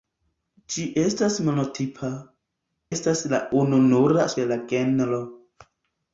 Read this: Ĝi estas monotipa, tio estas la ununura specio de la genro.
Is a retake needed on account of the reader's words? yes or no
yes